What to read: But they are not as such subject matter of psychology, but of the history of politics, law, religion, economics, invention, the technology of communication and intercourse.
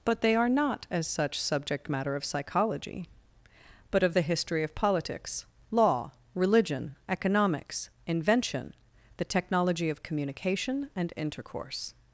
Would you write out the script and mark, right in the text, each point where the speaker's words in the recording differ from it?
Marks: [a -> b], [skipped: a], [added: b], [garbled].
But they are not as such subject matter of psychology, but of the history of politics, law, religion, economics, invention, the technology of communication and intercourse.